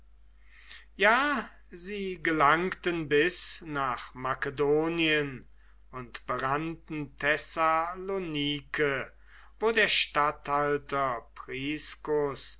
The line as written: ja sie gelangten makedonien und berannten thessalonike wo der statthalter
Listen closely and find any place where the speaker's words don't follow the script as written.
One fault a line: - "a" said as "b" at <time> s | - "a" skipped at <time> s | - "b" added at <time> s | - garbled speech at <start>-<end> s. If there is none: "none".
- "bis nach" added at 3.1 s